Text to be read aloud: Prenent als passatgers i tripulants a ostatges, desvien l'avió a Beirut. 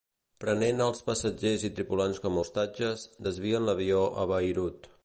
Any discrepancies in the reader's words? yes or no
yes